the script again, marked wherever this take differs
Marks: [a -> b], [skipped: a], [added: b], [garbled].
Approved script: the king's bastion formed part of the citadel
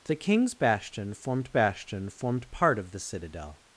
the king's bastion formed [added: bastion formed] part of the citadel